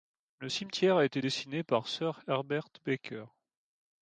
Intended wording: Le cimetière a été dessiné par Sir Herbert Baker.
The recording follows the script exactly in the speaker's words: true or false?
true